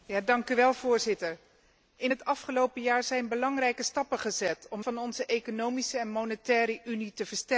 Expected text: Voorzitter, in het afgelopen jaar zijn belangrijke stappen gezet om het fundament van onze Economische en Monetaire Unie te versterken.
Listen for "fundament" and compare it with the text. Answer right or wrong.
wrong